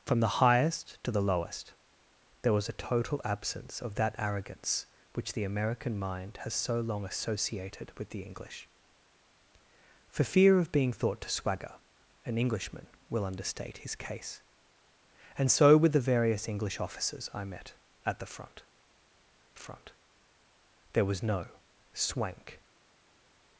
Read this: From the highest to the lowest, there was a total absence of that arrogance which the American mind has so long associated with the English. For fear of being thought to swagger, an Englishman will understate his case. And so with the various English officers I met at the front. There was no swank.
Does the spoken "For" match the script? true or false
true